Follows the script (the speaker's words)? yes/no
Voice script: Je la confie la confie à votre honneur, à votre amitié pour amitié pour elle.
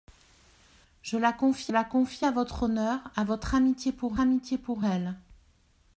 yes